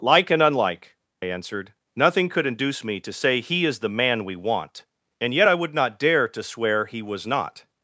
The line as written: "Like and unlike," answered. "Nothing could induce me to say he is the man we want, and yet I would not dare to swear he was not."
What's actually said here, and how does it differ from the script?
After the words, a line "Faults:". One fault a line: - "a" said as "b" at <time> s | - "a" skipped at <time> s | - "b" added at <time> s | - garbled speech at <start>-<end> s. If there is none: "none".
"Like and unlike," answered. "Nothing could induce me to say he is the man we want, and yet I would not dare to swear he was not."
Faults:
none